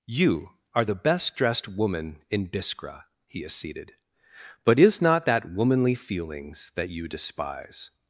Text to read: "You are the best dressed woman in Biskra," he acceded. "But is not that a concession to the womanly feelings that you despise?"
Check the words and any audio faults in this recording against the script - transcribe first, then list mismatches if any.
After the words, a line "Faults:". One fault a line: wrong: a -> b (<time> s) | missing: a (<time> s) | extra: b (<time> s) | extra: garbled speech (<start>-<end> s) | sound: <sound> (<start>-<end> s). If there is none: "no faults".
"You are the best dressed woman in Biskra," he acceded. "But is not that womanly feelings that you despise?"
Faults:
missing: a concession to the (5.5 s)